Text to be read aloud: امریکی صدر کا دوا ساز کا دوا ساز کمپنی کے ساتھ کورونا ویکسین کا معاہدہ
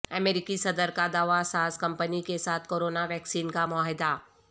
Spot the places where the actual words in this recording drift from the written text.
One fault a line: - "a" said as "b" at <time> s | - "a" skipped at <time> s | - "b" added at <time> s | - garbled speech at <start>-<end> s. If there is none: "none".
- "کا دوا ساز" skipped at 1.8 s